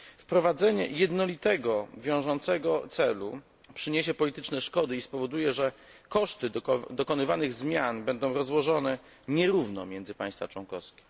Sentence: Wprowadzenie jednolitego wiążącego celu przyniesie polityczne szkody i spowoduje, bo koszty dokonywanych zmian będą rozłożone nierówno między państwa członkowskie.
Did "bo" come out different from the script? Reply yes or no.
yes